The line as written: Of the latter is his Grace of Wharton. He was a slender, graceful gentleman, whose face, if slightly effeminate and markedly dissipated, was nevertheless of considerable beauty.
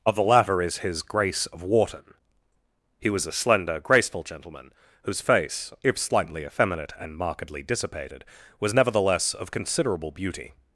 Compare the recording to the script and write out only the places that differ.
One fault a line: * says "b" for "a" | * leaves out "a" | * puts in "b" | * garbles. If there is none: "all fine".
all fine